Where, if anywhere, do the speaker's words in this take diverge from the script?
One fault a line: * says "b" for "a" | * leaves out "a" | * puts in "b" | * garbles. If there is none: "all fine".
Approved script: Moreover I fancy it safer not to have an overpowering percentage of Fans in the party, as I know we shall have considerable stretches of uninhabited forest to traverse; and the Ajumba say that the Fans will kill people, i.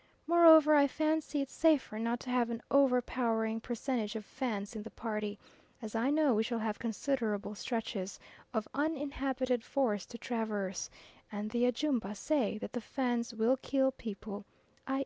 all fine